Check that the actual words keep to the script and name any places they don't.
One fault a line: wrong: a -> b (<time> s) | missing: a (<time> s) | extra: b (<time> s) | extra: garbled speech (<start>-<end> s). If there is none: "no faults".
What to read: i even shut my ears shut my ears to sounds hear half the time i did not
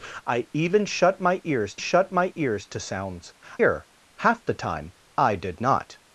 no faults